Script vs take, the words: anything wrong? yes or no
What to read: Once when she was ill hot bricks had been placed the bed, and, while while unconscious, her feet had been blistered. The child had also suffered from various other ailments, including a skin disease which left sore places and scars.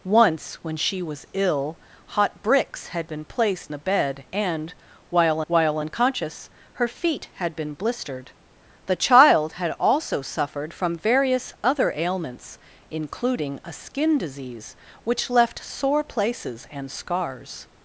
no